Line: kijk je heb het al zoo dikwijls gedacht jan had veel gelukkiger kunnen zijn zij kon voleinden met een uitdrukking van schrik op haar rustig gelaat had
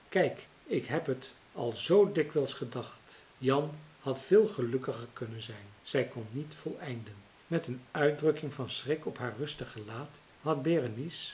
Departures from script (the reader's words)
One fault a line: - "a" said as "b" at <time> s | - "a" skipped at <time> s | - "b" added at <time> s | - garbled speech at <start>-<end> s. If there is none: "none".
- "je" said as "ik" at 0.6 s
- "niet" added at 6.3 s